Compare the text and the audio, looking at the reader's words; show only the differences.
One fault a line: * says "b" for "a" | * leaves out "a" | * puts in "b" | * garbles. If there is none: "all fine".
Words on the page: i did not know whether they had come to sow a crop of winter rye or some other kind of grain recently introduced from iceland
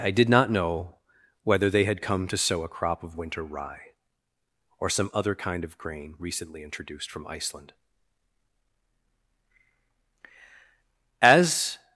* puts in "as"